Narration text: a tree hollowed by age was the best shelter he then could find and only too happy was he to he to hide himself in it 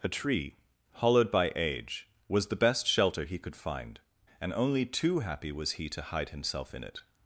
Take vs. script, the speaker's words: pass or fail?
fail